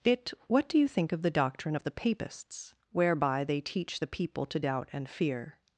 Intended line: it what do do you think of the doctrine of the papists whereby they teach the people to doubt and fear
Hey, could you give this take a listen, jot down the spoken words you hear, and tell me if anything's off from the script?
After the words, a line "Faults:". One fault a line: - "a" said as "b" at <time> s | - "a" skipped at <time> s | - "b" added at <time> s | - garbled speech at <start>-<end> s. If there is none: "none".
it what do you think of the doctrine of the papists whereby they teach the people to doubt and fear
Faults:
- "do" skipped at 0.8 s